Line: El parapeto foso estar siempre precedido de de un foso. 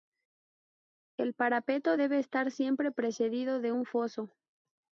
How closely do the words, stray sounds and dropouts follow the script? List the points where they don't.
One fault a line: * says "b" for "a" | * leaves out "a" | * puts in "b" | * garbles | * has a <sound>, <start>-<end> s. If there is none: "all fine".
* says "debe" for "foso"
* leaves out "de"